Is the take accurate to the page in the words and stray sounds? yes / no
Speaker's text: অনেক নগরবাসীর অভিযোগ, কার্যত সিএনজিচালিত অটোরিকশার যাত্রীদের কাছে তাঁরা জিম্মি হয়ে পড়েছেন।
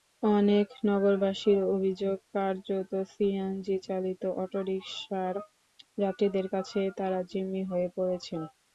yes